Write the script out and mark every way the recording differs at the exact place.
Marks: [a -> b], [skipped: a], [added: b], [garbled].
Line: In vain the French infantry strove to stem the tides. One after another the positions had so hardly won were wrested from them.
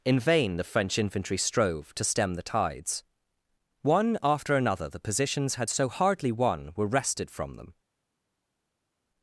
In vain the French infantry strove to stem the tides. One after another the positions had so hardly won were wrested from them.